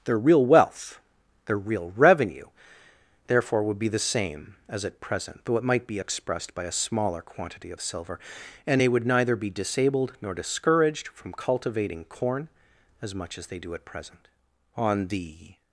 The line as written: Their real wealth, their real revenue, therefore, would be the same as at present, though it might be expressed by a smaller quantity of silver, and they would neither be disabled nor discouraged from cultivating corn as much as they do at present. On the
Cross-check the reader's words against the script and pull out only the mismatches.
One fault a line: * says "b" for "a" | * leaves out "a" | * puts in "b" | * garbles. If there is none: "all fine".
all fine